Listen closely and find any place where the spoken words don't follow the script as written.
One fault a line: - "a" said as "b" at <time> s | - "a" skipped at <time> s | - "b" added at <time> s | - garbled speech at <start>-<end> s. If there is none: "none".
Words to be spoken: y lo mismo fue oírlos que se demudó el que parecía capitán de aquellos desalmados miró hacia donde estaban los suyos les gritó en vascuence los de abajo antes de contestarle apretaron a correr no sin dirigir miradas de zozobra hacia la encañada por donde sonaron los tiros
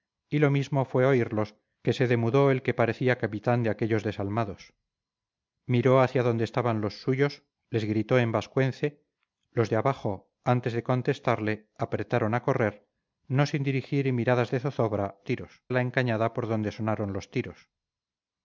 - "hacia" said as "tiros" at 15.2 s